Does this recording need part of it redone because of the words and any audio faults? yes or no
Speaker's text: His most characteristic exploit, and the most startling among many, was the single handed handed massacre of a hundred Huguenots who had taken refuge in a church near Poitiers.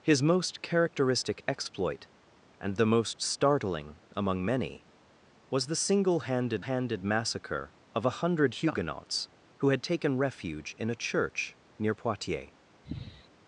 yes